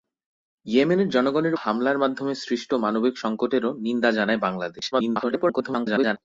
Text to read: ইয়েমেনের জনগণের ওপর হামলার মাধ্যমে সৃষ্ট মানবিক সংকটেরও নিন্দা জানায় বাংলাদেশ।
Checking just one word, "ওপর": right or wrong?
wrong